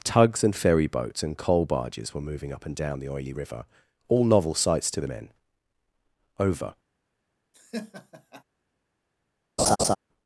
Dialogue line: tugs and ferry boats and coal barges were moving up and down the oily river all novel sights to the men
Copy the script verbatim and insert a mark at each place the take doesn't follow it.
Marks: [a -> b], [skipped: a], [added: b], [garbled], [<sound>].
tugs and ferry boats and coal barges were moving up and down the oily river all novel sights to the men [added: over] [laugh] [laugh]